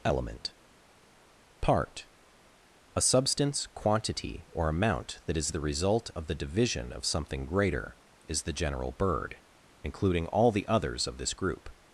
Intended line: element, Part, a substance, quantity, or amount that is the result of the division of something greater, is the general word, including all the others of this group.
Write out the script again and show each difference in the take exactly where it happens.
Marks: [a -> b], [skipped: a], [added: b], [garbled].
element, Part, a substance, quantity, or amount that is the result of the division of something greater, is the general [word, -> bird] including all the others of this group.